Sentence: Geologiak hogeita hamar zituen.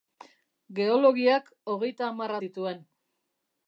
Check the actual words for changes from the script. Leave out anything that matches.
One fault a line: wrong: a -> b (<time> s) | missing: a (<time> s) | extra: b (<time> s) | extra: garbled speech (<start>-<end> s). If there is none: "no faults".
no faults